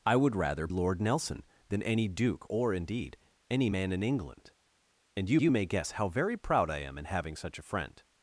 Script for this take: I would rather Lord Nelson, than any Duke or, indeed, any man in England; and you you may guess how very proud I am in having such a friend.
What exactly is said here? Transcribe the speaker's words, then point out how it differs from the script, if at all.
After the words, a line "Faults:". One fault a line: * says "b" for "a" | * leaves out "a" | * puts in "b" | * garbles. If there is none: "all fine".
I would rather Lord Nelson, than any Duke or, indeed, any man in England; and you you may guess how very proud I am in having such a friend.
Faults:
all fine